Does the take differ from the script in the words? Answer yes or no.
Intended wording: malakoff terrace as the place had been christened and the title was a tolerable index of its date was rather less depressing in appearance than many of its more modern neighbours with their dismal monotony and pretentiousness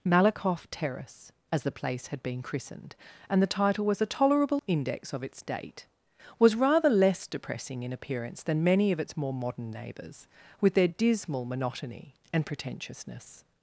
no